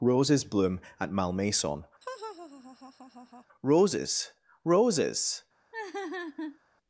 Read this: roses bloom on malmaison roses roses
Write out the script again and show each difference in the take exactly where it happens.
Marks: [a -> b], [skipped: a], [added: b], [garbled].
roses bloom [on -> at] malmaison roses roses